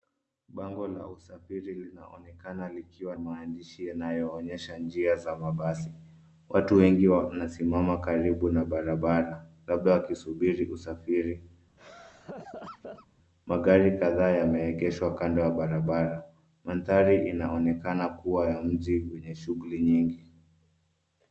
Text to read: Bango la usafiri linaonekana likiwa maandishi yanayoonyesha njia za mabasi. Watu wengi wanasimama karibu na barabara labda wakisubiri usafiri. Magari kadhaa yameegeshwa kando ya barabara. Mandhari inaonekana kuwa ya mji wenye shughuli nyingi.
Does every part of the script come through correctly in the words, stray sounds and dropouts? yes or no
no